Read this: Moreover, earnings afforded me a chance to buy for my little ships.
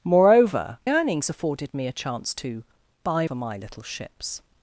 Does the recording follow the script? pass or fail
pass